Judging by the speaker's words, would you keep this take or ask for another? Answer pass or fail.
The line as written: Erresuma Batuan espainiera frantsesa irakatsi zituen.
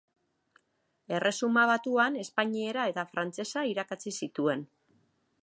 fail